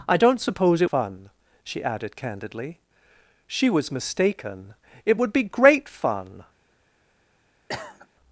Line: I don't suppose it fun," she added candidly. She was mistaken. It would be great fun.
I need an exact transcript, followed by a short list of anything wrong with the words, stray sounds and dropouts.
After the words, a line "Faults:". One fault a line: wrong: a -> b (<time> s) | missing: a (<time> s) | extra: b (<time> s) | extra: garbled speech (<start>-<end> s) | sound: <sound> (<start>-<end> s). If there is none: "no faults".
I don't suppose it fun," she added candidly. She was mistaken. It would be great fun.
Faults:
sound: cough (7.7-8.1 s)